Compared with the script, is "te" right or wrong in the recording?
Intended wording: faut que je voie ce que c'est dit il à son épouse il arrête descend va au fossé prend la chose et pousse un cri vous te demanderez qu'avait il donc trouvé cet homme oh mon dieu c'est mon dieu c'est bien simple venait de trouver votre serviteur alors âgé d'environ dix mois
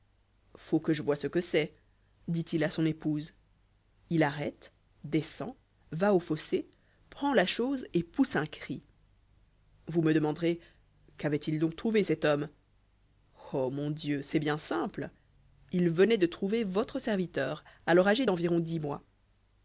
wrong